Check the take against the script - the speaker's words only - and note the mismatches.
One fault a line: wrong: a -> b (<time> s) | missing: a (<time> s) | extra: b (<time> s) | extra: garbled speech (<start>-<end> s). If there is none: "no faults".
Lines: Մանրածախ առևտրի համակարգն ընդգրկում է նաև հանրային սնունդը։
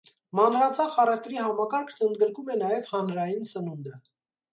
no faults